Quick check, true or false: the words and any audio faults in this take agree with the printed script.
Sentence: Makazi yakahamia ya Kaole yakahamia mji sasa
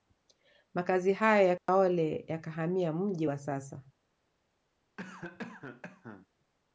false